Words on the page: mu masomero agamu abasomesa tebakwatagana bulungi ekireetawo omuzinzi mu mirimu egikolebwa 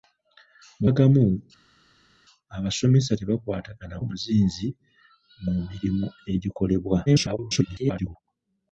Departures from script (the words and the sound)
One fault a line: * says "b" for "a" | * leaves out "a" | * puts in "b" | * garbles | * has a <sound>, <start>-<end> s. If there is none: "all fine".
* leaves out "masomero"
* leaves out "bulungi ekireetawo"
* garbles